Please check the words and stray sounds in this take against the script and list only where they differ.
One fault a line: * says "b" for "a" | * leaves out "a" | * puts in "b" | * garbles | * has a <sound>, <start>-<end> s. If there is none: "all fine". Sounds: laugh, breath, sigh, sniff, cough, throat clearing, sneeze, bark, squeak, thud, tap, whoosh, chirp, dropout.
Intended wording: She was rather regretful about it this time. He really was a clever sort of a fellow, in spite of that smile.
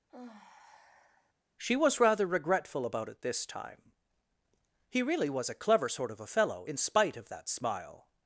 * has a sigh, 0.1-1.3 s